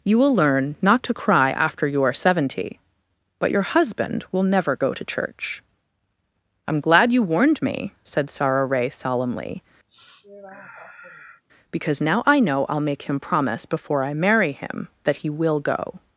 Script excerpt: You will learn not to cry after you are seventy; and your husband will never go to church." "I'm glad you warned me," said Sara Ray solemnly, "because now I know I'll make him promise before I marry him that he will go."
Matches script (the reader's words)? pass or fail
fail